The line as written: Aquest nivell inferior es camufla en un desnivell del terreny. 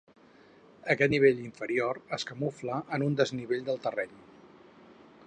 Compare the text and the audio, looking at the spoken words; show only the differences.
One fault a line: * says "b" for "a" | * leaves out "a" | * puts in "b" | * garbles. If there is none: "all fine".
all fine